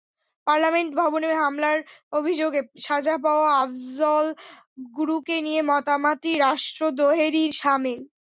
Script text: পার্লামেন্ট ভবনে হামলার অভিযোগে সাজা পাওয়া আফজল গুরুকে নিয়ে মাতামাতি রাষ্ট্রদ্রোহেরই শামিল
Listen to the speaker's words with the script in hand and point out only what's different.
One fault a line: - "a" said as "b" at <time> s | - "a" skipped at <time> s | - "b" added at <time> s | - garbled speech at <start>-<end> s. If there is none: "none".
none